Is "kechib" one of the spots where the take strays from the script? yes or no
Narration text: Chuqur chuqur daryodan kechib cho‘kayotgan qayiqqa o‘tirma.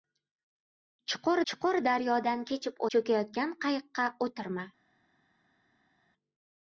no